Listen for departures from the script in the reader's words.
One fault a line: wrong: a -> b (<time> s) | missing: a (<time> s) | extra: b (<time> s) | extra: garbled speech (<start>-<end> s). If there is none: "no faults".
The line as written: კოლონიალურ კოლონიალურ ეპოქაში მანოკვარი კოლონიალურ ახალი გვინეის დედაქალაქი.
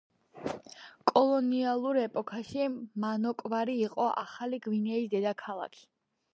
missing: კოლონიალურ (2.0 s)
wrong: კოლონიალურ -> იყო (3.9 s)